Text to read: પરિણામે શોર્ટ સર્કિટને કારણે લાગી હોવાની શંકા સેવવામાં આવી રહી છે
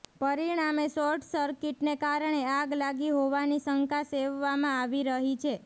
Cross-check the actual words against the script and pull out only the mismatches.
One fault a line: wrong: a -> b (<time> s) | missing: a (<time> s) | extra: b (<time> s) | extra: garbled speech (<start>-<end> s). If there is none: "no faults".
extra: આગ (2.5 s)